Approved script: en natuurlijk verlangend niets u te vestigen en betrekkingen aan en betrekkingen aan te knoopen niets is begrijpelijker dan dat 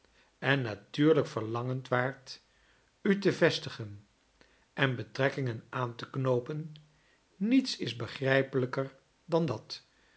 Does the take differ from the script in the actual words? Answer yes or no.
yes